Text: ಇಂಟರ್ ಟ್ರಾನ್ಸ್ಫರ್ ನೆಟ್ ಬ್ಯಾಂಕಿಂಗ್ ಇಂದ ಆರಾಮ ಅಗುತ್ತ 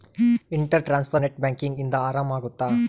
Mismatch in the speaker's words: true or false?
false